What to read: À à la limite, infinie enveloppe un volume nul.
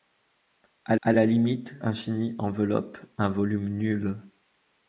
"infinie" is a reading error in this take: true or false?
false